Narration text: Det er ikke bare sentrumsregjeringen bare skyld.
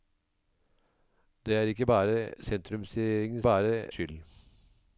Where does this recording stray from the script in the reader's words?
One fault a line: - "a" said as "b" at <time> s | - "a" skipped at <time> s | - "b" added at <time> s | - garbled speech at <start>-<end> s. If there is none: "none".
none